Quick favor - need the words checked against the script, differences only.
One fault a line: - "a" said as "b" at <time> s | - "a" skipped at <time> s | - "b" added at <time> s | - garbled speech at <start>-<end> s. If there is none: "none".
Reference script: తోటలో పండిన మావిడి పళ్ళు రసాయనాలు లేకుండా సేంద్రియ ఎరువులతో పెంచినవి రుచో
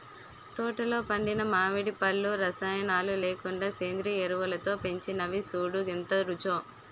- "సూడూ ఎంత" added at 5.5 s